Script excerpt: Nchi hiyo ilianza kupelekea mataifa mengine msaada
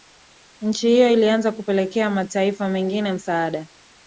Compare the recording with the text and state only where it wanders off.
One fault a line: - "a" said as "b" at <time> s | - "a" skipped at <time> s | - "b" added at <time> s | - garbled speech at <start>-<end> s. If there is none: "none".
none